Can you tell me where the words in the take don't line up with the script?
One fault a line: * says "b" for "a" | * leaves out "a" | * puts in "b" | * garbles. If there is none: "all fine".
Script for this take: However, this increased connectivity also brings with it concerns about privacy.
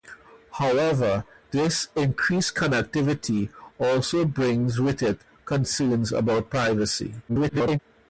* garbles